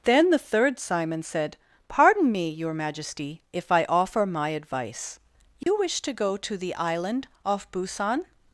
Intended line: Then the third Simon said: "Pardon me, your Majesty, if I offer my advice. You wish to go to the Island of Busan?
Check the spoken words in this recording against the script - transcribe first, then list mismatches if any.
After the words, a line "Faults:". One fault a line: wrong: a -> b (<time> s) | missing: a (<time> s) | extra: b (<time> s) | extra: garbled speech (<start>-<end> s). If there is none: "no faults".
Then the third Simon said: "Pardon me, your Majesty, if I offer my advice. You wish to go to the Island off Busan?
Faults:
wrong: of -> off (7.4 s)